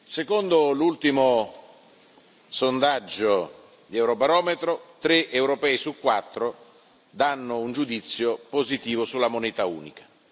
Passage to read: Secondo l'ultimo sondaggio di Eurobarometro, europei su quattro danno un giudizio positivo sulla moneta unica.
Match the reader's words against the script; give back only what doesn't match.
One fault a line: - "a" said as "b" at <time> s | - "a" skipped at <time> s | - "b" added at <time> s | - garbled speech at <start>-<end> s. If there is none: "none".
- "tre" added at 5.0 s